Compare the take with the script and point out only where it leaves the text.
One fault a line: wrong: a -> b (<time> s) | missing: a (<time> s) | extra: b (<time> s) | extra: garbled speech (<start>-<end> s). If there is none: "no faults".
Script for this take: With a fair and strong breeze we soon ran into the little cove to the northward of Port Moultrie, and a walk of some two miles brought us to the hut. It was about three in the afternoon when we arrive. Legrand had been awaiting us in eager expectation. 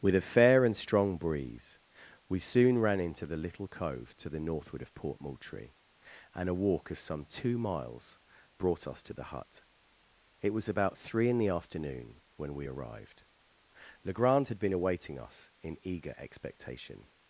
wrong: arrive -> arrived (12.6 s)